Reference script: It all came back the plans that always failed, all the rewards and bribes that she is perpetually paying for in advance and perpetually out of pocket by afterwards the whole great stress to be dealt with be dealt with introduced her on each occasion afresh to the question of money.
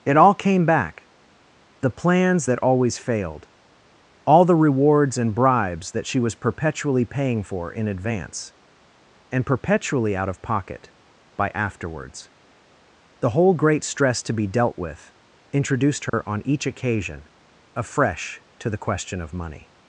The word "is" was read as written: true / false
false